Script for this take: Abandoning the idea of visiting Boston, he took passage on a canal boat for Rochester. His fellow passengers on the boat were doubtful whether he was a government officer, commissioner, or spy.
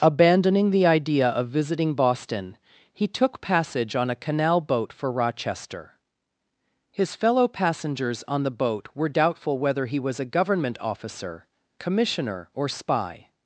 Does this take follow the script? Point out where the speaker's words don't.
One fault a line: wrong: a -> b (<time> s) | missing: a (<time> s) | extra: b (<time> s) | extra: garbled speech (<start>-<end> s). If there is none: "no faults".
no faults